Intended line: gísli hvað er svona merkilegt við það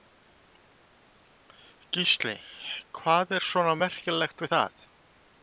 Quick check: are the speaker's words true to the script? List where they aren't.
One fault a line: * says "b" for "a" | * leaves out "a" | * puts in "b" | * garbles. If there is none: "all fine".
all fine